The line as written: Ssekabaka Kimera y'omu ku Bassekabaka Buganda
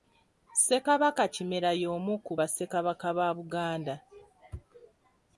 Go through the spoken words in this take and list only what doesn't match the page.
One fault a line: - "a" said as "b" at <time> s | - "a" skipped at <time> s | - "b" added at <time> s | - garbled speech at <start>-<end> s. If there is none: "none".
- "ba" added at 3.2 s